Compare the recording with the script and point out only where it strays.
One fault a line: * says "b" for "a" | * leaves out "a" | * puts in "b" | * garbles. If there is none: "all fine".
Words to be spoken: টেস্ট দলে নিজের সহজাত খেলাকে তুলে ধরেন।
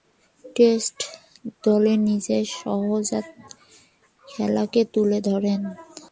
all fine